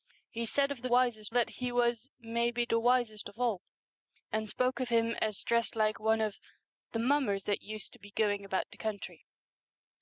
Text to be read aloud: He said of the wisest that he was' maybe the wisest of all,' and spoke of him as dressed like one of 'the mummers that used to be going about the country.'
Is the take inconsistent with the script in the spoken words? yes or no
no